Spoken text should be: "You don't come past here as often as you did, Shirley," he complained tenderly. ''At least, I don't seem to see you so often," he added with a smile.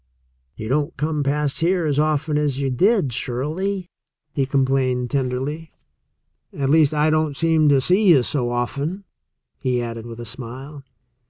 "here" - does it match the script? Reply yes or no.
yes